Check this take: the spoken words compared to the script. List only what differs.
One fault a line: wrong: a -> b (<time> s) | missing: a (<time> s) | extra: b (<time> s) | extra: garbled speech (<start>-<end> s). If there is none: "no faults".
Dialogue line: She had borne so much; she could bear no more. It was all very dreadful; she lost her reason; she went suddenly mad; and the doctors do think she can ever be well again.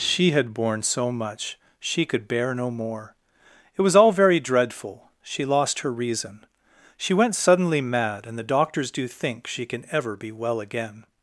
no faults